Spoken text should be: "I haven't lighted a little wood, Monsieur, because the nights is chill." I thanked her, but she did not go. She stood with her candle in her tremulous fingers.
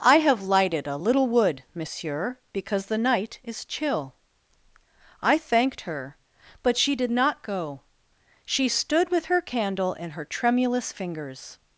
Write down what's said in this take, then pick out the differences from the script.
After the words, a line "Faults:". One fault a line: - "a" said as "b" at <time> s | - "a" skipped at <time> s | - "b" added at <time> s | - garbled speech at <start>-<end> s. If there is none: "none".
"I have lighted a little wood, Monsieur, because the night is chill." I thanked her, but she did not go. She stood with her candle in her tremulous fingers.
Faults:
- "haven't" said as "have" at 0.2 s
- "nights" said as "night" at 3.0 s